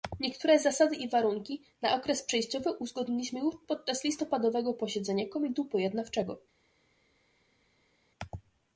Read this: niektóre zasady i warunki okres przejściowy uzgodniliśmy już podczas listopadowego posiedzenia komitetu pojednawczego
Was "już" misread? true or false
false